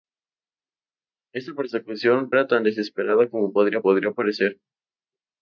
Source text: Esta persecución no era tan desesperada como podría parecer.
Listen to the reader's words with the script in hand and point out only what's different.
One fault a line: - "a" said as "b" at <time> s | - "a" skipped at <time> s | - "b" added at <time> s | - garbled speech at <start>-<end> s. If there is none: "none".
- "no" skipped at 2.3 s
- "podría" added at 3.8 s